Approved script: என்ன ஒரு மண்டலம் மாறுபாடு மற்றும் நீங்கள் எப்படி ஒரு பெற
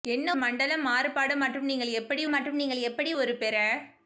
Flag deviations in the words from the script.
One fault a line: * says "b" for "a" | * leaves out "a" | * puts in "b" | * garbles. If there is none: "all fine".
* leaves out "ஒரு"
* puts in "மற்றும் நீங்கள் எப்படி"